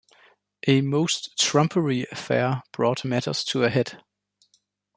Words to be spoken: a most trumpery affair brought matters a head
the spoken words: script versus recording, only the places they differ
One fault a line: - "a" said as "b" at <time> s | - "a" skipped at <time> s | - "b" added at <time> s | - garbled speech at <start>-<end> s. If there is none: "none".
- "to" added at 3.5 s